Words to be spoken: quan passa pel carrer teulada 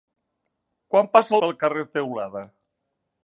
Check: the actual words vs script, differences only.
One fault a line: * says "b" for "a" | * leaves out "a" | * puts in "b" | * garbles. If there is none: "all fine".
all fine